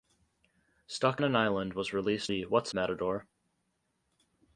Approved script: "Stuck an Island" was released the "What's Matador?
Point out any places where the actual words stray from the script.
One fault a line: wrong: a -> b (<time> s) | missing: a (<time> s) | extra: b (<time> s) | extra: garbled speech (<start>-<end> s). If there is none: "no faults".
no faults